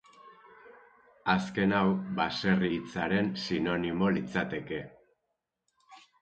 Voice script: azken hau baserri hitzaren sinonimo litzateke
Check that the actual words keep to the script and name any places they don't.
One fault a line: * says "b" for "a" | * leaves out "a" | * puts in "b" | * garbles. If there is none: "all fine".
all fine